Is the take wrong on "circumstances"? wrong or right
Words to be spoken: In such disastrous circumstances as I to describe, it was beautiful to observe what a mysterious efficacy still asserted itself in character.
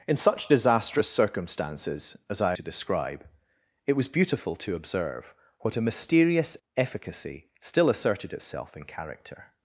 right